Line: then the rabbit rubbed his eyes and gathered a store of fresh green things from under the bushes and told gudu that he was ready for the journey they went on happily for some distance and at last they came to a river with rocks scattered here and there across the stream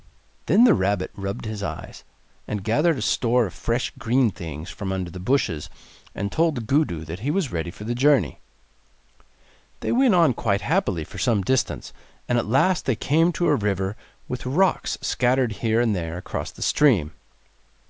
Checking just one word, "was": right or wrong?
right